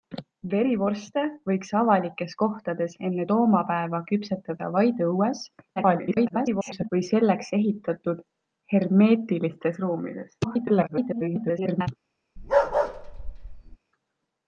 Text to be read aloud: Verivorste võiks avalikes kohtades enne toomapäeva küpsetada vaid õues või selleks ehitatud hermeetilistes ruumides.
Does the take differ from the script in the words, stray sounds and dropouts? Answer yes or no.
yes